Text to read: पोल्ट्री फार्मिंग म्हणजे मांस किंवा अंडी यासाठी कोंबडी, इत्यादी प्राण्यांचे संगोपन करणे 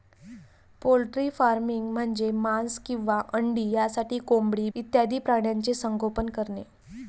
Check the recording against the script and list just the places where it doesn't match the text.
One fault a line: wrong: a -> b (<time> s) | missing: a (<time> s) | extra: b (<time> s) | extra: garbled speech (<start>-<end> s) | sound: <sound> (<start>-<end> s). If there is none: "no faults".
no faults